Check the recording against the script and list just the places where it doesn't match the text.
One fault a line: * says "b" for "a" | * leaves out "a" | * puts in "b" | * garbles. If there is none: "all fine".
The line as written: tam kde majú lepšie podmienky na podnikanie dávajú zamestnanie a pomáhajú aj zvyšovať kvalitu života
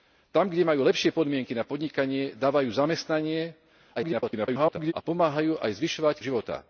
* garbles
* leaves out "kvalitu"